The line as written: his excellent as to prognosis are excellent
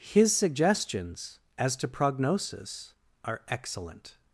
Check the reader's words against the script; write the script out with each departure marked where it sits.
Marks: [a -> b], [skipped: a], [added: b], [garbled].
his [excellent -> suggestions] as to prognosis are excellent